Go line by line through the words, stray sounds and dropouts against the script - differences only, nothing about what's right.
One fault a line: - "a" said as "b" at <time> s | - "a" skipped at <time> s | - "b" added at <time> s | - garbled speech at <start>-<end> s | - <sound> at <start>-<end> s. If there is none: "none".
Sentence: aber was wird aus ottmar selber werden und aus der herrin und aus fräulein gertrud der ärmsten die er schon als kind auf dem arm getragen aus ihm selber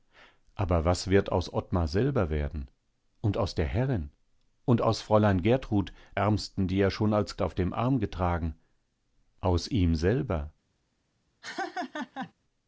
- "der" skipped at 5.9 s
- "kind" skipped at 7.4 s
- laugh at 11.4-12.3 s